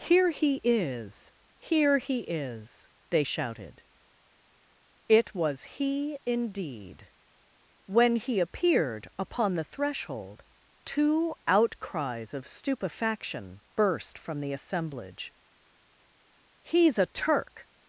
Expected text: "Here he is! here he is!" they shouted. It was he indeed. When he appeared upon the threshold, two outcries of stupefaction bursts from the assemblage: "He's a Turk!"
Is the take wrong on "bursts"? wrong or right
wrong